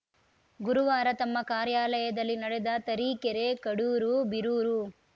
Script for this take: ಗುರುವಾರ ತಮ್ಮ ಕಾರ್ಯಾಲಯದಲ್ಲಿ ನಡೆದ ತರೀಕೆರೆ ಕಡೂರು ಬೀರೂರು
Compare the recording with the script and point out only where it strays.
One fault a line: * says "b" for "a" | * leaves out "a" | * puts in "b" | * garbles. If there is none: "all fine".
all fine